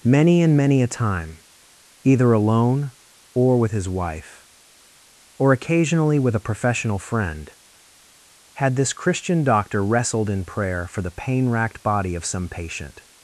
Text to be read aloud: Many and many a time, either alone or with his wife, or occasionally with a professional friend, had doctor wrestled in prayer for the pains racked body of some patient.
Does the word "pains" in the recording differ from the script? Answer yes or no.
yes